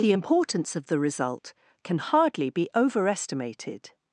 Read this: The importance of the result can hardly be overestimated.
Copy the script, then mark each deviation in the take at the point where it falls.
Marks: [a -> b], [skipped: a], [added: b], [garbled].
The importance of the result can hardly be overestimated.